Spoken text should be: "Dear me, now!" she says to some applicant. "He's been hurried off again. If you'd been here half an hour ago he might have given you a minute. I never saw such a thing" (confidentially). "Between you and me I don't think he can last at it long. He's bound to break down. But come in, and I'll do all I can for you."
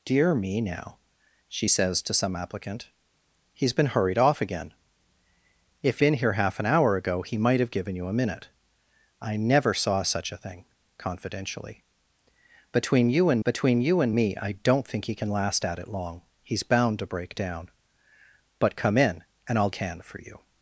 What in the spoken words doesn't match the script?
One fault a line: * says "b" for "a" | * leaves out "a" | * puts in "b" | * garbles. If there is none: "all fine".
* leaves out "you'd"
* puts in "between you and"
* leaves out "do all I"